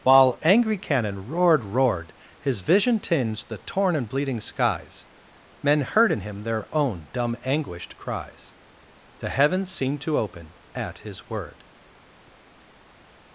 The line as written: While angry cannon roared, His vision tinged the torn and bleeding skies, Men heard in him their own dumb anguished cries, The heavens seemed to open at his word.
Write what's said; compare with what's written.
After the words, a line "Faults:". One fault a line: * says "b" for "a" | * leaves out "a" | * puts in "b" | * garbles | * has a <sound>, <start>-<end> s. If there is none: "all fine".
While angry cannon roared roared, His vision tinged the torn and bleeding skies, Men heard in him their own dumb anguished cries, The heavens seemed to open at his word.
Faults:
* puts in "roared"